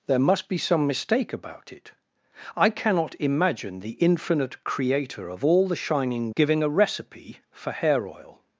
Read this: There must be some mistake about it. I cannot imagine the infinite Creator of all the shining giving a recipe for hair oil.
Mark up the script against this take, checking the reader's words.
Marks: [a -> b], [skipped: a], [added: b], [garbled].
There must be some mistake about it. I cannot imagine the infinite Creator of all the shining giving a recipe for hair oil.